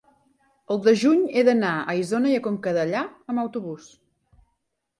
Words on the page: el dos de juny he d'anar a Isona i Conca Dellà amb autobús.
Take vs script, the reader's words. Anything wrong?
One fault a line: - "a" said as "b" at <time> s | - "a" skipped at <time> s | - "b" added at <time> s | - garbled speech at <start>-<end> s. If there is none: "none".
- "dos" skipped at 0.8 s